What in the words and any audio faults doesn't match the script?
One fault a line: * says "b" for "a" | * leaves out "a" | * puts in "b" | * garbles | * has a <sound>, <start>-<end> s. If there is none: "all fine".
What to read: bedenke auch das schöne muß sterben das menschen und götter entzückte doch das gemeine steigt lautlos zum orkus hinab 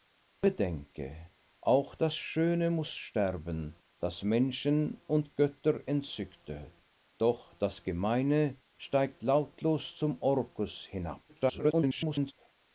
* garbles